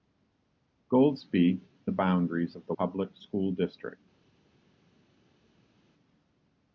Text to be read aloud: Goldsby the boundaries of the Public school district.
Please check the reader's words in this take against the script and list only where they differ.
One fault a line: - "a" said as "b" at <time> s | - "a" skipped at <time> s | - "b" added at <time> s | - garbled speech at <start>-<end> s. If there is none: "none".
none